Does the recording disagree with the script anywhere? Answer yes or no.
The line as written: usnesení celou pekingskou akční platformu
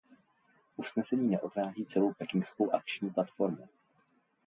yes